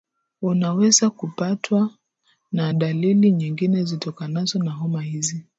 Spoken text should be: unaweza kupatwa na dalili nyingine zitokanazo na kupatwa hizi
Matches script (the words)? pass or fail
fail